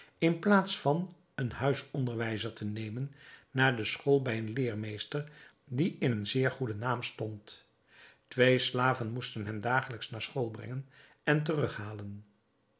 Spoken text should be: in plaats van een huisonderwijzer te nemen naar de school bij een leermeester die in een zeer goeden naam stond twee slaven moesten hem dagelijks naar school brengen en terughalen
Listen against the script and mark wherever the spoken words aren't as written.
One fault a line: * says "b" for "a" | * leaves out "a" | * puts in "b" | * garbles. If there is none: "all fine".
all fine